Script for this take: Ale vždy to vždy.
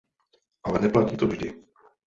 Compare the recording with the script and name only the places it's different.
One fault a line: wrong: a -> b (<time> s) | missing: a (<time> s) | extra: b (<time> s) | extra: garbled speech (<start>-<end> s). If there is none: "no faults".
wrong: vždy -> neplatí (0.8 s)